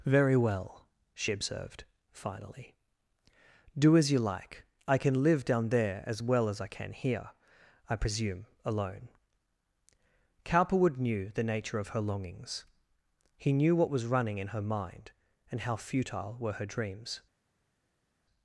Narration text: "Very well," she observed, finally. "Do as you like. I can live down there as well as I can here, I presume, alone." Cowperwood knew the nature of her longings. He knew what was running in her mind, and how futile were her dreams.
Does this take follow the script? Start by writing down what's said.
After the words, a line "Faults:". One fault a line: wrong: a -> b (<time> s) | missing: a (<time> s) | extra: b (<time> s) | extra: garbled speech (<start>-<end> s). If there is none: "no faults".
"Very well," she observed, finally. "Do as you like. I can live down there as well as I can here, I presume, alone." Cowperwood knew the nature of her longings. He knew what was running in her mind, and how futile were her dreams.
Faults:
no faults